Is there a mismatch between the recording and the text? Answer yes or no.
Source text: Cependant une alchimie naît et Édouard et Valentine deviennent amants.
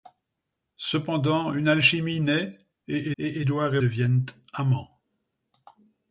yes